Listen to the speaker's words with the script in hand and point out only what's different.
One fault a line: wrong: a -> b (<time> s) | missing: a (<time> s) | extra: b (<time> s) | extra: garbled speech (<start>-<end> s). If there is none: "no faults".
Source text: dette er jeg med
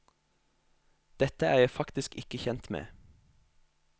extra: faktisk ikke kjent (1.7 s)